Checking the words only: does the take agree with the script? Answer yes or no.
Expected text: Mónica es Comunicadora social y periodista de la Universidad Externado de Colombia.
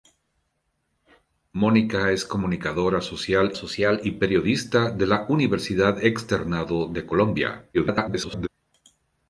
no